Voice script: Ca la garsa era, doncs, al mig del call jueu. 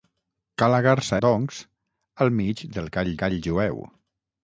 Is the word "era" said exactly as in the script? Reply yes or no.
no